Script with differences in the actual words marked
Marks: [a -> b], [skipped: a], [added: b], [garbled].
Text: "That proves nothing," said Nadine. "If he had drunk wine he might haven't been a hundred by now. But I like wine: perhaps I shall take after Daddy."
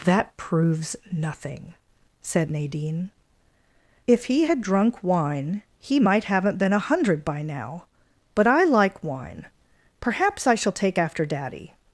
"That proves nothing," said Nadine. "If he had drunk wine he might haven't been a hundred by now. But I like wine: perhaps I shall take after Daddy."